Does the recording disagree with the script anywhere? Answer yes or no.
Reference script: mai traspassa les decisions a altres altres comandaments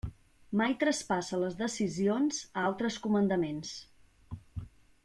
yes